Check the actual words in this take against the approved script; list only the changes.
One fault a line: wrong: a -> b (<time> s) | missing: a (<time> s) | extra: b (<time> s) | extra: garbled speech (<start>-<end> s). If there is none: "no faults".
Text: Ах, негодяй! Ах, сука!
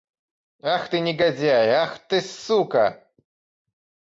extra: ты (0.9 s)
extra: ты (2.1 s)